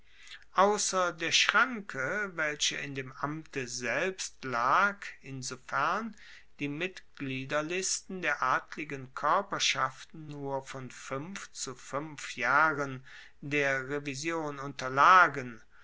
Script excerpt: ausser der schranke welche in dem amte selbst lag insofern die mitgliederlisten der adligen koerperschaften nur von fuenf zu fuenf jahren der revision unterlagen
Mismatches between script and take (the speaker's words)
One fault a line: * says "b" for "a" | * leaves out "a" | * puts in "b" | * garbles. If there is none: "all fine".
all fine